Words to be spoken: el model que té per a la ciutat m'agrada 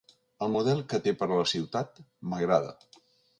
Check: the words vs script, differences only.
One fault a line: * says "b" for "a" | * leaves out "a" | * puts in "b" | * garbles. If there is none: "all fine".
all fine